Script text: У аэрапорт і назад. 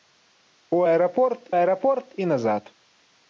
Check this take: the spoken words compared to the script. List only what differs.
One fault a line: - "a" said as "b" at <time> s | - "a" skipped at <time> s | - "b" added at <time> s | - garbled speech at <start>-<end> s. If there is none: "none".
- "аэрапорт" added at 1.6 s